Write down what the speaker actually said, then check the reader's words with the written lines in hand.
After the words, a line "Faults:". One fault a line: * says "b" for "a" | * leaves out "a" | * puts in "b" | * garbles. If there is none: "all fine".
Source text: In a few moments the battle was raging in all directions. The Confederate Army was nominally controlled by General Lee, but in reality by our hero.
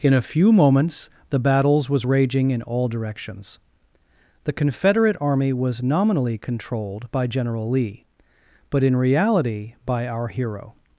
In a few moments the battles was raging in all directions. The Confederate Army was nominally controlled by General Lee, but in reality by our hero.
Faults:
* says "battles" for "battle"